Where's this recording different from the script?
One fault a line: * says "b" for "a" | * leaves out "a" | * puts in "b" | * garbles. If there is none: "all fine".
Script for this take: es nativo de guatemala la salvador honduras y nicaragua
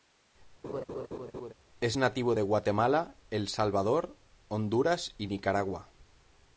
* says "el" for "la"